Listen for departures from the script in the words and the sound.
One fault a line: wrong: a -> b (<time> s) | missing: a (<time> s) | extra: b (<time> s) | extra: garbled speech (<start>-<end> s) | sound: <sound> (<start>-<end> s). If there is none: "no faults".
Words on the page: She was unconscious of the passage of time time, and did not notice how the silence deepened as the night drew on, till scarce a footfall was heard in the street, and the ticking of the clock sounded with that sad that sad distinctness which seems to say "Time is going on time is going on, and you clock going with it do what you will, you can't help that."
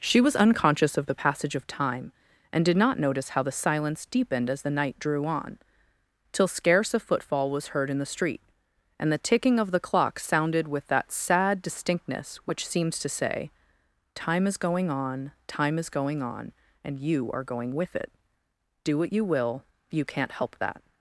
missing: time (2.1 s)
missing: that sad (11.6 s)
wrong: clock -> are (17.3 s)